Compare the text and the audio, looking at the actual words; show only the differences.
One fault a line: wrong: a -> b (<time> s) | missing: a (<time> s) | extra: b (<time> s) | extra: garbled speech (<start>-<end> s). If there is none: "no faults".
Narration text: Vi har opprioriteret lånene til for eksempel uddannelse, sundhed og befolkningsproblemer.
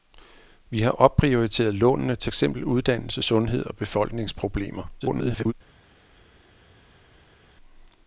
missing: for (2.3 s)
extra: garbled speech (5.0-5.5 s)